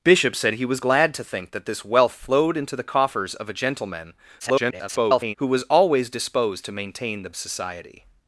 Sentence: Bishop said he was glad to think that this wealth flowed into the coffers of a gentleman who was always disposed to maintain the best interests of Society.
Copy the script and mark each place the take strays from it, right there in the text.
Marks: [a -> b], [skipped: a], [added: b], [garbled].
Bishop said he was glad to think that this wealth flowed into the coffers of a gentleman [garbled] who was always disposed to maintain the [skipped: best interests of] Society.